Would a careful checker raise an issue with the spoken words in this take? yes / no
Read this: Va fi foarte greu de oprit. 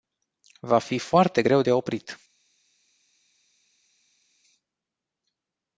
no